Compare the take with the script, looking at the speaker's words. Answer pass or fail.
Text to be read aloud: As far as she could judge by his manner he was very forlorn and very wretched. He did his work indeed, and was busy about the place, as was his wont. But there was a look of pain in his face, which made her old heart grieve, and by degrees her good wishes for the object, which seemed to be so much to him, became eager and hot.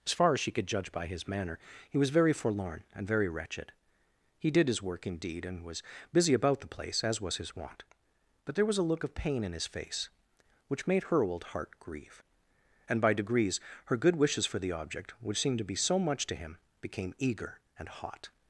pass